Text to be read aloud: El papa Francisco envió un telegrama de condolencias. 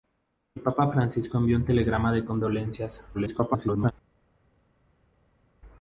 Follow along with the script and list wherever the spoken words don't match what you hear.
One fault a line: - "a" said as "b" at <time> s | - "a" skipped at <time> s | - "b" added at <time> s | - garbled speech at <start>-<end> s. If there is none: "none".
- garbled speech at 3.1-3.9 s